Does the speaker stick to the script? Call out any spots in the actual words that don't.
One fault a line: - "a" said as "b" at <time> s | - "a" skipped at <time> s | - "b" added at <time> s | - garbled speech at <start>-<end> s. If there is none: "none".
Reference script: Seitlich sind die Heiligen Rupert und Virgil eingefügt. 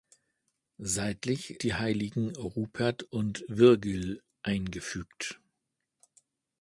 - "sind" skipped at 1.6 s